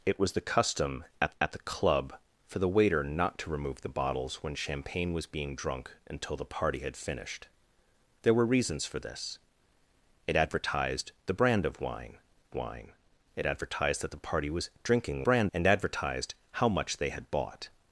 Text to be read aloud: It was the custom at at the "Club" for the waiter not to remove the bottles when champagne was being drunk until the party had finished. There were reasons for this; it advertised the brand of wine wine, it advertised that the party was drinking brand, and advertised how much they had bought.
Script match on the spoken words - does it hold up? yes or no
yes